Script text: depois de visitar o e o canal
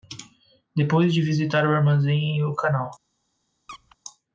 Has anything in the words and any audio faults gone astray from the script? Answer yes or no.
yes